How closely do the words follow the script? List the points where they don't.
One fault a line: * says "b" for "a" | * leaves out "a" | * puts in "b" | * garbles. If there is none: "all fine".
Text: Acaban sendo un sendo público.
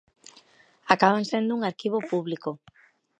* says "arquivo" for "sendo"